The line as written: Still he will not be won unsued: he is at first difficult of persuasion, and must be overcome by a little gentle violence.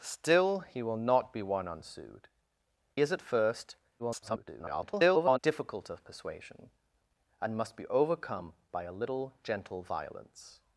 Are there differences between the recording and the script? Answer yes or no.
yes